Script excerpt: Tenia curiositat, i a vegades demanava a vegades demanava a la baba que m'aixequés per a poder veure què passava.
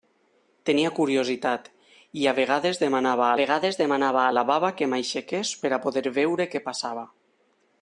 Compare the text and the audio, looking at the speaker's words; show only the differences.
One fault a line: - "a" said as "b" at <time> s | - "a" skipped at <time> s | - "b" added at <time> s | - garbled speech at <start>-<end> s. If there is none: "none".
none